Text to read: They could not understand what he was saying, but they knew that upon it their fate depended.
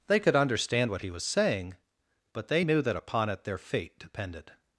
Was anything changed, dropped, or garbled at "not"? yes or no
yes